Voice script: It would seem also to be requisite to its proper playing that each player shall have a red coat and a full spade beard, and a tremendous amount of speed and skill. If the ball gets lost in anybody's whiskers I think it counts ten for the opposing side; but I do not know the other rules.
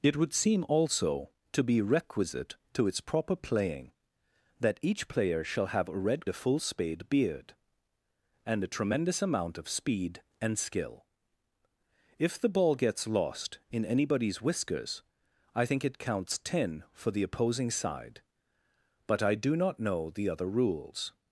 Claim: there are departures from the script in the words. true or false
true